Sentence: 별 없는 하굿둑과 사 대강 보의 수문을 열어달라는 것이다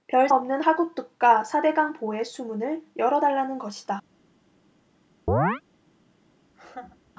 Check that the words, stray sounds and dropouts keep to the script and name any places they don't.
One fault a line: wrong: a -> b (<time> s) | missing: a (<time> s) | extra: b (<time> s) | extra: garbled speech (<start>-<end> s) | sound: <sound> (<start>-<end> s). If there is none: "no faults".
sound: chirp (5.3-5.6 s)
sound: laugh (6.5-7.1 s)